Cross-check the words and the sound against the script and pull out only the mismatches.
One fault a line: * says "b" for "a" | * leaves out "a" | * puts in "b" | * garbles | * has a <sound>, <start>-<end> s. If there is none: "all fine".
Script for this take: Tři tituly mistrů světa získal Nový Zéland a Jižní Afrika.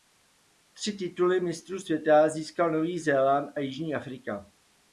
all fine